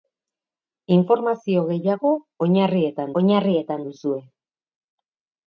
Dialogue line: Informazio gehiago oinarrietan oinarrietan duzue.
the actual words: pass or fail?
pass